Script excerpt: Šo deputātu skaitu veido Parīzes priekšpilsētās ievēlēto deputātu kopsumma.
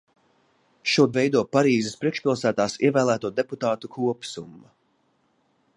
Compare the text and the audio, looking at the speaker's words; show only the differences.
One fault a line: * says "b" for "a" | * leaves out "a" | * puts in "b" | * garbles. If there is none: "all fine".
* leaves out "deputātu skaitu"